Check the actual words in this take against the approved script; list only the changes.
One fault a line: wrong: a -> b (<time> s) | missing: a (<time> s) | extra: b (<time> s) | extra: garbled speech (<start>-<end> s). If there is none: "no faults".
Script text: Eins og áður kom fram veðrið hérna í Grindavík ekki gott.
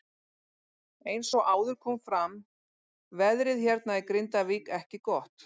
no faults